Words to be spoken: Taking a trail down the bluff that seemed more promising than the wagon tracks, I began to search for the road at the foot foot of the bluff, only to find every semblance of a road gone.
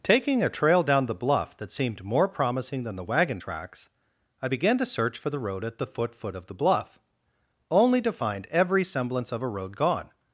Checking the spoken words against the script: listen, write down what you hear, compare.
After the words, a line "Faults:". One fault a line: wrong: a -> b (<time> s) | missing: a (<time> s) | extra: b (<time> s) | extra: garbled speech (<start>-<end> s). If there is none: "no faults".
Taking a trail down the bluff that seemed more promising than the wagon tracks, I began to search for the road at the foot foot of the bluff, only to find every semblance of a road gone.
Faults:
no faults